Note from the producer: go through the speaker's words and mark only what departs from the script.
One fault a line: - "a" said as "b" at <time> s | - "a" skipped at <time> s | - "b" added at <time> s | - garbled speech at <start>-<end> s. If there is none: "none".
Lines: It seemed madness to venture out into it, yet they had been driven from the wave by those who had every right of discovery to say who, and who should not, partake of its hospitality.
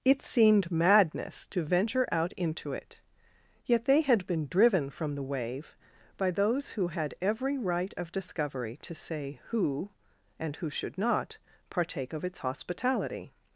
none